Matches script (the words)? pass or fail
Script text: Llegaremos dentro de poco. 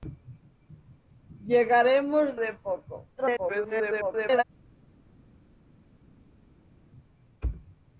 fail